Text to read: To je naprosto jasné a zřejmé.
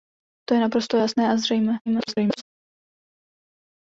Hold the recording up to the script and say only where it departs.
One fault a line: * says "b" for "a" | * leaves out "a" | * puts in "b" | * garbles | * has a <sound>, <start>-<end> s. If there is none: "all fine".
* garbles